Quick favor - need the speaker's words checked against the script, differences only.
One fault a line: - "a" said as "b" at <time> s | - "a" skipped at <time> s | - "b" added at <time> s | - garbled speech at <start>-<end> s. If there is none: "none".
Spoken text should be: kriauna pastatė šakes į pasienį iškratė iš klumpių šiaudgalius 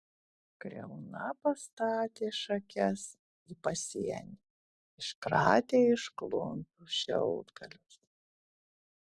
none